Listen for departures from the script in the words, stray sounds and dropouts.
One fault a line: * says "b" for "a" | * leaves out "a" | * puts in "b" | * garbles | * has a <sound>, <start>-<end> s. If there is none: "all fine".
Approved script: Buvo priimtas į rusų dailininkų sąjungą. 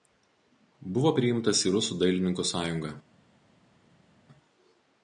all fine